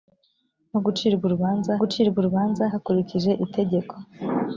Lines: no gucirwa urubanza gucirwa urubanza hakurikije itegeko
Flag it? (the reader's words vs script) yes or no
no